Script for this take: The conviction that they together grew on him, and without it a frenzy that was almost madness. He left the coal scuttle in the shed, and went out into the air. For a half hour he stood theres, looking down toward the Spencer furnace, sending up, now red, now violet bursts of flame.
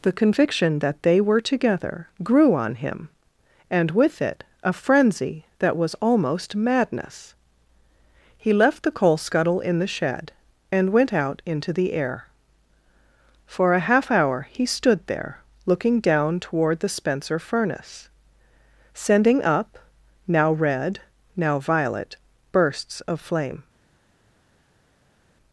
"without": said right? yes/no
no